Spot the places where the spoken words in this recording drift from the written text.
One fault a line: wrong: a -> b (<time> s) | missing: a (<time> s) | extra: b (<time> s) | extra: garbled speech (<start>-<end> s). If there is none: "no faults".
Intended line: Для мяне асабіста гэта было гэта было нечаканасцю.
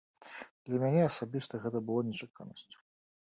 missing: гэта было (2.0 s)